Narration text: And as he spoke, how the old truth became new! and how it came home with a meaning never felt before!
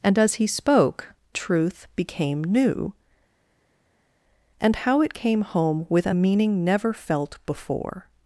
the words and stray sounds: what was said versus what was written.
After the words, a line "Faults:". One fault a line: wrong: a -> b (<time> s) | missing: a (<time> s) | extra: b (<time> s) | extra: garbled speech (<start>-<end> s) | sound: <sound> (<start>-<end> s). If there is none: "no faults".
And as he spoke, truth became new! and how it came home with a meaning never felt before!
Faults:
missing: how the old (1.1 s)